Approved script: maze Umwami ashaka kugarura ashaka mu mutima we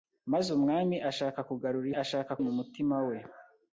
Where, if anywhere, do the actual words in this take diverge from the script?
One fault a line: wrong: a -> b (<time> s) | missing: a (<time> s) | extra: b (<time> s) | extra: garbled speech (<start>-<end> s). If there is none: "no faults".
no faults